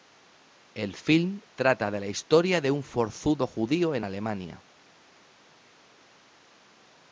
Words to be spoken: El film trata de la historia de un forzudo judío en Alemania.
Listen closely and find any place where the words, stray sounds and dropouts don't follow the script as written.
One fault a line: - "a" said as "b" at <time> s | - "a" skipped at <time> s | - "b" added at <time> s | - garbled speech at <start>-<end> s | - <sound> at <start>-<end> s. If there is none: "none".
none